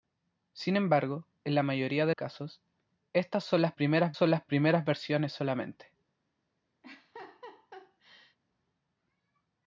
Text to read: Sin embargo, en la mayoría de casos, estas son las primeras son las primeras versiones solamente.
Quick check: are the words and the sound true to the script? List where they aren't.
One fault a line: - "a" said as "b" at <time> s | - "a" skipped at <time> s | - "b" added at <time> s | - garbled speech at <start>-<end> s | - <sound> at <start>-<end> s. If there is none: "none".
- laugh at 6.8-8.4 s